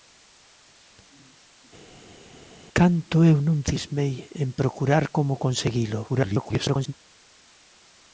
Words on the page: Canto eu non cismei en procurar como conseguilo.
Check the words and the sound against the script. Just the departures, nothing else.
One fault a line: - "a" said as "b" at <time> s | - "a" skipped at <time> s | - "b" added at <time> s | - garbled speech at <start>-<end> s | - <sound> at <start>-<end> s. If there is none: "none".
- garbled speech at 6.1-6.9 s